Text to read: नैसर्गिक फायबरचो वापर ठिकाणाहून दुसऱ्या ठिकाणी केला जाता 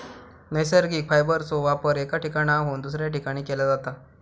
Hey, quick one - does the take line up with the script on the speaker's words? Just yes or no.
no